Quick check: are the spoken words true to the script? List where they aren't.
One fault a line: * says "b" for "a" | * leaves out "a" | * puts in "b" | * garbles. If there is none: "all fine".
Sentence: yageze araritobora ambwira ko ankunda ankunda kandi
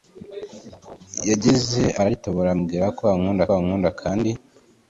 all fine